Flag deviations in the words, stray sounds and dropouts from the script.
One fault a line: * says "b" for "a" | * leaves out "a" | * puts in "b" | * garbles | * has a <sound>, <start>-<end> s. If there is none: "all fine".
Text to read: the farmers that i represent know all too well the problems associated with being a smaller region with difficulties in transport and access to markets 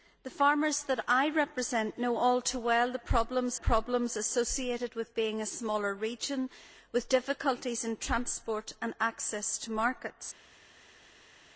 * puts in "problems"